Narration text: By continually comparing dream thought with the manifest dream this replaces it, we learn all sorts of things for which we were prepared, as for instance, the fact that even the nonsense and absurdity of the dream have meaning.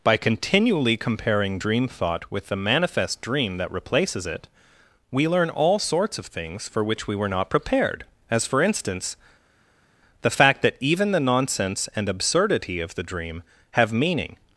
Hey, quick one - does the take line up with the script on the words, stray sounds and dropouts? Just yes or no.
no